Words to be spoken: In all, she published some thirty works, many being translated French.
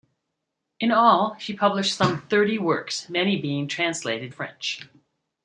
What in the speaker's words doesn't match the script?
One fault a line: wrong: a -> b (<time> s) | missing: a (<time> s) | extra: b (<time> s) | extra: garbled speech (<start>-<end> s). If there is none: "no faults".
no faults